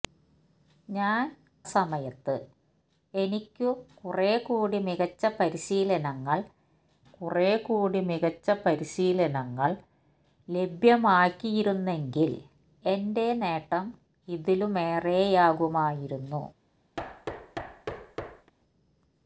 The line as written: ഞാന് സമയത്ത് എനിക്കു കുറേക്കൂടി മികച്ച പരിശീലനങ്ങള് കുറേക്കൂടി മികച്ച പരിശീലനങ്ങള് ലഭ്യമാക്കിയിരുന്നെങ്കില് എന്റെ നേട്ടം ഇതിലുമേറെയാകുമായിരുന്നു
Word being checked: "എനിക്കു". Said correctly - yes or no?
yes